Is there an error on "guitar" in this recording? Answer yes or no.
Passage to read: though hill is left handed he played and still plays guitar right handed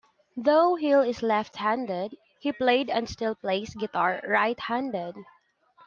no